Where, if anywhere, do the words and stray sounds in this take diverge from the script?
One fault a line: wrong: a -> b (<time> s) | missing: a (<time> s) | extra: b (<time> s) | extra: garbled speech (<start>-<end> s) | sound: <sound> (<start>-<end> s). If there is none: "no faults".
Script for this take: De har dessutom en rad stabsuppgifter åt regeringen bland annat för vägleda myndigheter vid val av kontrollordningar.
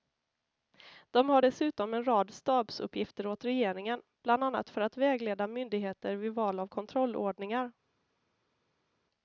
extra: att (4.8 s)